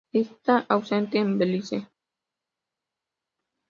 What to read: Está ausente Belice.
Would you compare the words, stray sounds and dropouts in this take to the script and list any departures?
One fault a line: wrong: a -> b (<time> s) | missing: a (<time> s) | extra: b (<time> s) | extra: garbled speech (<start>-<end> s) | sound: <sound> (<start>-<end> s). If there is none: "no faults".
extra: en (1.2 s)